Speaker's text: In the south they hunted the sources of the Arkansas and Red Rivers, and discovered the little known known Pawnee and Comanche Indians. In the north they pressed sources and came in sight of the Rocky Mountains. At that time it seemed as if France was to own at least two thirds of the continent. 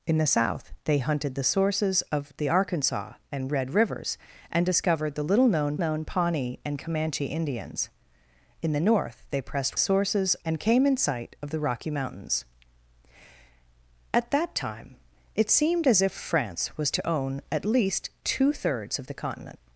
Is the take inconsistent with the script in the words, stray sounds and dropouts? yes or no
no